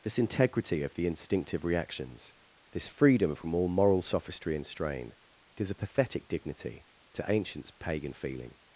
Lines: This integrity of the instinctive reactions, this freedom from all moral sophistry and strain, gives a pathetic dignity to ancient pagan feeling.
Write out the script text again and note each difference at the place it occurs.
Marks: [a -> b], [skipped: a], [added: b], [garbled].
This integrity of the instinctive reactions, this freedom from all moral sophistry and strain, gives a pathetic dignity to [ancient -> ancients] pagan feeling.